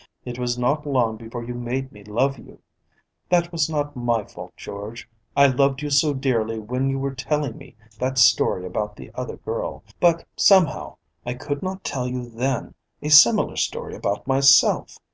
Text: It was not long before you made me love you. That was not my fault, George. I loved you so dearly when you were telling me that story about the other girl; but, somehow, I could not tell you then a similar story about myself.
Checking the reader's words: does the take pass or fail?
pass